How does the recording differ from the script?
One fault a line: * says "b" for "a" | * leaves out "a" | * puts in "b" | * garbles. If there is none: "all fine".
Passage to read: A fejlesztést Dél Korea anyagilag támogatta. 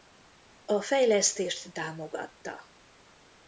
* leaves out "Dél Korea anyagilag"